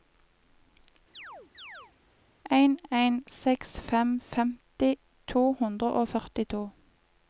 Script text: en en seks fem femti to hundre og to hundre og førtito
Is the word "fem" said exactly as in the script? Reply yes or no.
yes